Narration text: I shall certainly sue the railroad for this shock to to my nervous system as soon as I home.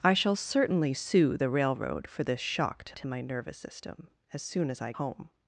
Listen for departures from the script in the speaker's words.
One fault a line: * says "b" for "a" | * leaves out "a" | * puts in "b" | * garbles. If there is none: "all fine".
all fine